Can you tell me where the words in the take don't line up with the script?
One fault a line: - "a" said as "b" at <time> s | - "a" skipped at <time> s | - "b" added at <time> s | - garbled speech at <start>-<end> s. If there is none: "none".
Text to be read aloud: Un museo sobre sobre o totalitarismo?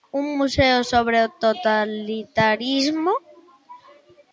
- "sobre" skipped at 1.2 s